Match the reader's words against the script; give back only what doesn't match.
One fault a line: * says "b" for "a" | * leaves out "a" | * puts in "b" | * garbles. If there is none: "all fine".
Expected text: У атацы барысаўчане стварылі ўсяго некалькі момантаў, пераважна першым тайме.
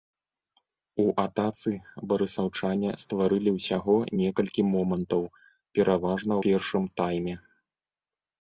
all fine